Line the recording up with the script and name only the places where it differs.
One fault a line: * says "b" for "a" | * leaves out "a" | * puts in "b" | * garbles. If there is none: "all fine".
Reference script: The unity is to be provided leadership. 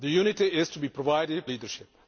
all fine